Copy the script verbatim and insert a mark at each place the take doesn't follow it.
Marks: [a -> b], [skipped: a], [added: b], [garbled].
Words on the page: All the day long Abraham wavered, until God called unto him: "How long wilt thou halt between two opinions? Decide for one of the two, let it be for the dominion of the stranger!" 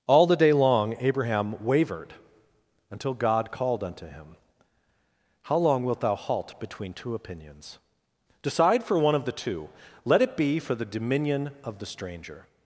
All the day long Abraham wavered, until God called unto him: "How long wilt thou halt between two opinions? Decide for one of the two, let it be for the dominion of the stranger!"